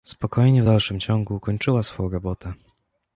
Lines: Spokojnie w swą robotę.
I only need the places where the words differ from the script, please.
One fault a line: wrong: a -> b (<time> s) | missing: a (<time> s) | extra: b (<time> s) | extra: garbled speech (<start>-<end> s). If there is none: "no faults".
extra: dalszym ciągu kończyła (0.6 s)